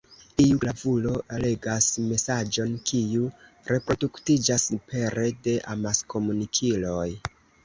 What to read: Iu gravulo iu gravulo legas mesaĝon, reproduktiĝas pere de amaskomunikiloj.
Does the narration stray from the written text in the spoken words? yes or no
yes